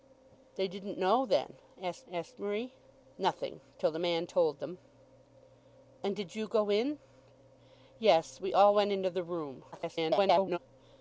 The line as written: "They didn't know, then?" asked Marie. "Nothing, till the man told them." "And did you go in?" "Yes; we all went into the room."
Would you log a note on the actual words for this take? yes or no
yes